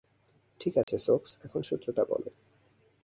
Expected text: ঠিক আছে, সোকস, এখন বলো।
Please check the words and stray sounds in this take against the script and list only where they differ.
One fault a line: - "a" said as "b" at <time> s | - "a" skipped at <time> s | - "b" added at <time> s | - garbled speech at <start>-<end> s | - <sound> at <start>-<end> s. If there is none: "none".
- dropout at 0.8-0.9 s
- "সূত্রটা" added at 1.6 s